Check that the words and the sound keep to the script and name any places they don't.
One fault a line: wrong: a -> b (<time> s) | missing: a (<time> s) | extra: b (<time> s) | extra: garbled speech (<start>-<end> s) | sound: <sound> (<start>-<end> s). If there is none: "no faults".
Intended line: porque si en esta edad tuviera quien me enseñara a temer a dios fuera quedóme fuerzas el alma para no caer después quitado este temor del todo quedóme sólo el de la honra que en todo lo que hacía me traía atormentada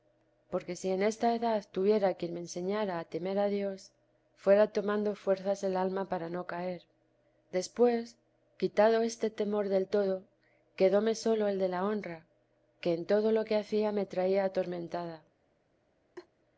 wrong: quedóme -> tomando (4.7 s)
sound: laugh (16.1-16.3 s)